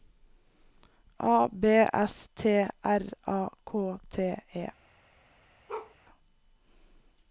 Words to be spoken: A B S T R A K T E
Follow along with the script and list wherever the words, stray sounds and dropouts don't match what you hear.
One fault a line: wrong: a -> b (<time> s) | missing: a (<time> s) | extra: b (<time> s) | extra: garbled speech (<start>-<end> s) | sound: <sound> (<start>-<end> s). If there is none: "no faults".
sound: bark (5.7-6.0 s)